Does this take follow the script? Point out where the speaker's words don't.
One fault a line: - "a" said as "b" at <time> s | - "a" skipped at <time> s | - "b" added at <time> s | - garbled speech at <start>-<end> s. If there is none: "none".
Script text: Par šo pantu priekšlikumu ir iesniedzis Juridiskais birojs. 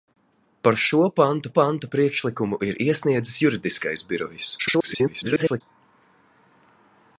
- "pantu" added at 1.6 s
- garbled speech at 4.6-5.6 s